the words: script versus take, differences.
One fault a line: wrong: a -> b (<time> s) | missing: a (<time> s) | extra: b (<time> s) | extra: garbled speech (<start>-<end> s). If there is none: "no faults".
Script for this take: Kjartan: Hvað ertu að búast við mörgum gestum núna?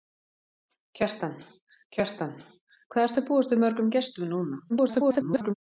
extra: kjartan (2.0 s)
extra: garbled speech (4.7-5.5 s)